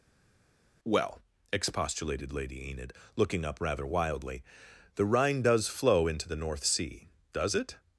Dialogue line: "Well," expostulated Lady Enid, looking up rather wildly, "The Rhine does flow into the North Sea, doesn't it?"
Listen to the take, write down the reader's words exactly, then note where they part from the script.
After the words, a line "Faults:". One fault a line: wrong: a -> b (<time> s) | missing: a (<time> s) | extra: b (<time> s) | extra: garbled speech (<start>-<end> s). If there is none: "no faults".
"Well," expostulated Lady Enid, looking up rather wildly, "The Rhine does flow into the North Sea, does it?"
Faults:
wrong: doesn't -> does (7.3 s)